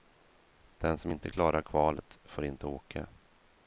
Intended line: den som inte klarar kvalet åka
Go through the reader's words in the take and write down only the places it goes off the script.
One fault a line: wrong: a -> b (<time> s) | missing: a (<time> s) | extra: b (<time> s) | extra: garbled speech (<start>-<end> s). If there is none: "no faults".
extra: får inte (2.2 s)